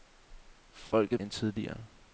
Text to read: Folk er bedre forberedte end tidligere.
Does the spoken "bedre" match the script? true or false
false